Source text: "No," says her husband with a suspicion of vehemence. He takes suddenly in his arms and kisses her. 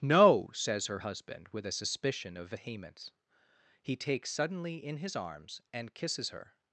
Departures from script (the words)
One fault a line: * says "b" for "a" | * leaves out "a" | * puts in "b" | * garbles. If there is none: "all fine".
all fine